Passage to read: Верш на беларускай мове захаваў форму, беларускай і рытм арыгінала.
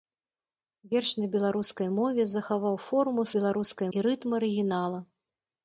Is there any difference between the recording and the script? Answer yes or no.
no